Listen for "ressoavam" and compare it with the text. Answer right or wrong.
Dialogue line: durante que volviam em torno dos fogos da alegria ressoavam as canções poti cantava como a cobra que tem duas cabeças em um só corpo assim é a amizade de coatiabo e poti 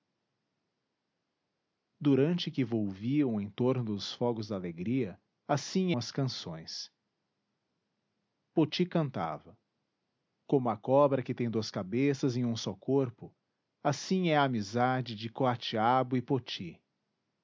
wrong